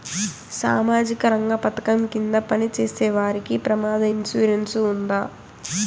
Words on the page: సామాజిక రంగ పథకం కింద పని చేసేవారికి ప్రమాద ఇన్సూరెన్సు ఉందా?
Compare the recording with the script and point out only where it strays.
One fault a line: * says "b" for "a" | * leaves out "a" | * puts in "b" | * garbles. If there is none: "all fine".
all fine